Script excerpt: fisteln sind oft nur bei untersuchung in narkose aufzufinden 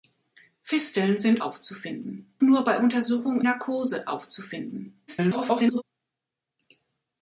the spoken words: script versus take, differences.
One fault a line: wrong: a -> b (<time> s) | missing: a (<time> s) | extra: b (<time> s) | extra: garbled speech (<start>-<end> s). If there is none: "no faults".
wrong: oft -> aufzufinden (1.4 s)
missing: in (3.4 s)
extra: garbled speech (5.1-5.8 s)